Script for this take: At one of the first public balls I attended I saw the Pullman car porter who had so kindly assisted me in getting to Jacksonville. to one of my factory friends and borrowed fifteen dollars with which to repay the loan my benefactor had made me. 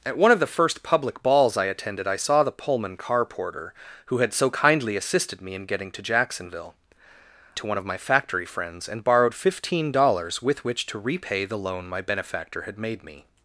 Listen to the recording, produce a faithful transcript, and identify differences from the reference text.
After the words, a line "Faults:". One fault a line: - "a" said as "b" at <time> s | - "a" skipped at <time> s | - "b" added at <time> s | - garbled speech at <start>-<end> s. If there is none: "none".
At one of the first public balls I attended I saw the Pullman car porter who had so kindly assisted me in getting to Jacksonville. to one of my factory friends and borrowed fifteen dollars with which to repay the loan my benefactor had made me.
Faults:
none